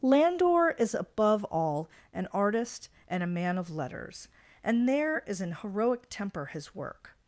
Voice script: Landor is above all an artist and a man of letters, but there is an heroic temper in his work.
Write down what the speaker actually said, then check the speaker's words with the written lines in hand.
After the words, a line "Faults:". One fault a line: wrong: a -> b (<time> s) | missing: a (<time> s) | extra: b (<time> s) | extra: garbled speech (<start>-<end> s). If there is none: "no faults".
Landor is above all an artist and a man of letters, and there is an heroic temper his work.
Faults:
wrong: but -> and (4.6 s)
missing: in (6.4 s)